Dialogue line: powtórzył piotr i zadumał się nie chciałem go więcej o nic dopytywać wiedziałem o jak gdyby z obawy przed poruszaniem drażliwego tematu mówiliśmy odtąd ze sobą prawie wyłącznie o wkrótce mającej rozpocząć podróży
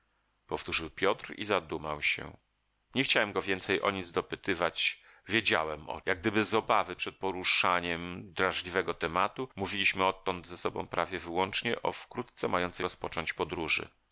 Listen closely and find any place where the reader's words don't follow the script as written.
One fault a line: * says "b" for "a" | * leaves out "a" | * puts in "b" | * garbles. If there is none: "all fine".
all fine